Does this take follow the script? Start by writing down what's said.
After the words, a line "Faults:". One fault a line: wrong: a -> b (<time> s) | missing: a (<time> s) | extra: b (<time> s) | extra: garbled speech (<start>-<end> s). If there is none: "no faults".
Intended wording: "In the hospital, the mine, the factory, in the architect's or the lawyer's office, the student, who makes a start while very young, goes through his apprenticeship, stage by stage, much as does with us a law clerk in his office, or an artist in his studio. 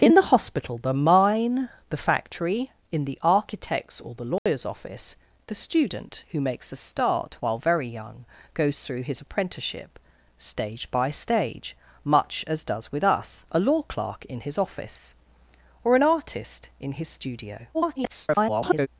"In the hospital, the mine, the factory, in the architect's or the lawyer's office, the student, who makes a start while very young, goes through his apprenticeship, stage by stage, much as does with us a law clerk in his office, or an artist in his studio. [garbled]
Faults:
extra: garbled speech (17.7-18.9 s)